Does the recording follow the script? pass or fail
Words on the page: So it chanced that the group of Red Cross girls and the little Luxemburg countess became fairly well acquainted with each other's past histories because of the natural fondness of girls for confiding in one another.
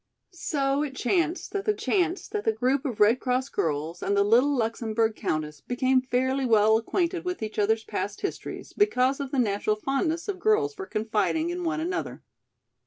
fail